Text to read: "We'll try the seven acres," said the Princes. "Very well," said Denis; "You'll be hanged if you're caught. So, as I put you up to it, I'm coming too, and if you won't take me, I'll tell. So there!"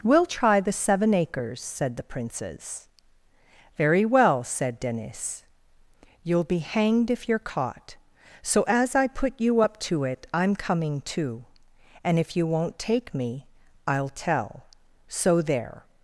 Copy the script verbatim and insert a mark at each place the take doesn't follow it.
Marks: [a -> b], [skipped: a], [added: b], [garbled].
"We'll try the seven acres," said the Princes. "Very well," said Denis; "You'll be hanged if you're caught. So, as I put you up to it, I'm coming too, and if you won't take me, I'll tell. So there!"